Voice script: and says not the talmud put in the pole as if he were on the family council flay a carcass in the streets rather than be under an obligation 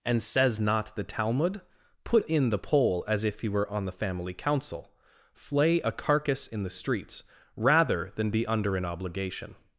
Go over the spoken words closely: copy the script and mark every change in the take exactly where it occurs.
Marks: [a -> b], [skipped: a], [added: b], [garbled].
and says not the talmud put in the pole as if he were on the family council flay a carcass in the streets rather than be under an obligation